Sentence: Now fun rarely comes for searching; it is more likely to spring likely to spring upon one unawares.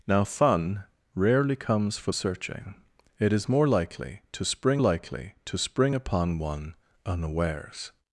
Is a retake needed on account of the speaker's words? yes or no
no